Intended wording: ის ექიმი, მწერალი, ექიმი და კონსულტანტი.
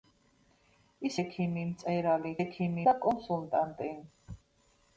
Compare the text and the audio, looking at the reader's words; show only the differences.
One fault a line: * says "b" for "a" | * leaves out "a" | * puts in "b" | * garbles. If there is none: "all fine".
all fine